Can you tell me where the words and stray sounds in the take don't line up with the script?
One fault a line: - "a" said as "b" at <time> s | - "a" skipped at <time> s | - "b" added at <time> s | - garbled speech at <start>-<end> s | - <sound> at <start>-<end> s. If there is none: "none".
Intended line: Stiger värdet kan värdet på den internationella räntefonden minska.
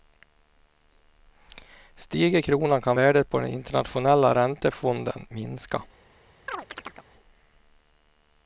- "värdet" said as "kronan" at 2.4 s
- chirp at 6.5-7.1 s